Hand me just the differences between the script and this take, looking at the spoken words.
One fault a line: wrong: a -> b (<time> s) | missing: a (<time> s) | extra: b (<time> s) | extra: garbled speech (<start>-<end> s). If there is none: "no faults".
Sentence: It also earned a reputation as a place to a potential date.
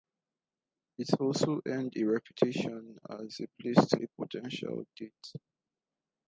no faults